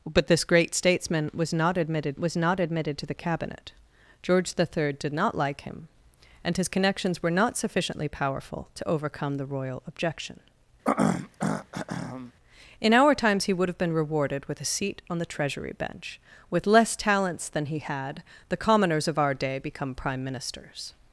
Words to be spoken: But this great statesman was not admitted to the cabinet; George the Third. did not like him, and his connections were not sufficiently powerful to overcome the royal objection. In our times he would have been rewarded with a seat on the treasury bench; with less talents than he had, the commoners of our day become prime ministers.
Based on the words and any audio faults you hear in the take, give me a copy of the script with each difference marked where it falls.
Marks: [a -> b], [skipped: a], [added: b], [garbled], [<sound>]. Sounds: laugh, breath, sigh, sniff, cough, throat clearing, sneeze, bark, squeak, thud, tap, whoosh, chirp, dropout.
But this great statesman was not admitted [added: was not admitted] to the cabinet; George the Third. did not like him, and his connections were not sufficiently powerful to overcome the royal objection. [throat clearing] In our times he would have been rewarded with a seat on the treasury bench; with less talents than he had, the commoners of our day become prime ministers.